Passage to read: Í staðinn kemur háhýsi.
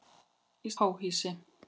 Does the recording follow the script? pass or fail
fail